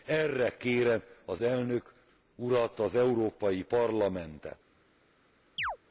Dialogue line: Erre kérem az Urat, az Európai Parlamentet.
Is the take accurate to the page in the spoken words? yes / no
no